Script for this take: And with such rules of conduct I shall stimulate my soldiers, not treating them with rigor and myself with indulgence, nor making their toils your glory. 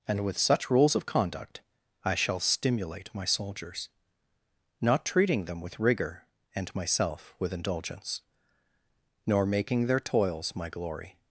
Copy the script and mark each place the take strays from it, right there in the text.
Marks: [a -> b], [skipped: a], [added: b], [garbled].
And with such rules of conduct I shall stimulate my soldiers, not treating them with rigor and myself with indulgence, nor making their toils [your -> my] glory.